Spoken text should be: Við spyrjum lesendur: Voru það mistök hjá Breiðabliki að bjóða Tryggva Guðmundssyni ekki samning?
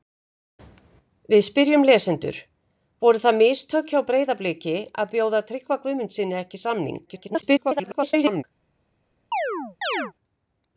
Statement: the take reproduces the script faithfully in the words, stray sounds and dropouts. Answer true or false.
false